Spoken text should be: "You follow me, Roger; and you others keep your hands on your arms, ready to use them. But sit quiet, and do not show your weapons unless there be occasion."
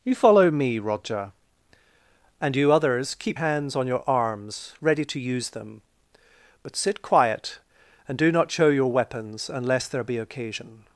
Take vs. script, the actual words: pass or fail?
fail